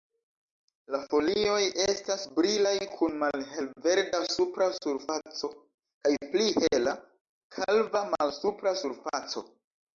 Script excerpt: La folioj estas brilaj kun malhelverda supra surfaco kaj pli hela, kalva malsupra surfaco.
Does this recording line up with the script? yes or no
yes